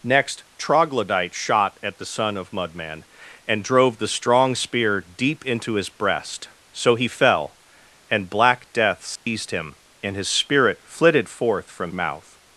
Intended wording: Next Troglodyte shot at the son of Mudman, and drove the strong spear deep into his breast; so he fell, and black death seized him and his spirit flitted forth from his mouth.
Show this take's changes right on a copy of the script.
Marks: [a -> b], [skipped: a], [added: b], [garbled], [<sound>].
Next Troglodyte shot at the son of Mudman, and drove the strong spear deep into his breast; so he fell, and black death seized [dropout] him and his spirit flitted forth from [skipped: his] mouth.